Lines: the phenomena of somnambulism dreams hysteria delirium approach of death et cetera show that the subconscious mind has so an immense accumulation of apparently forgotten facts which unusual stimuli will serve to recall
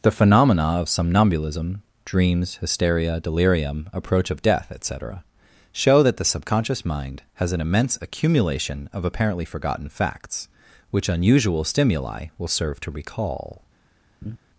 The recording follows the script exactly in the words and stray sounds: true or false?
false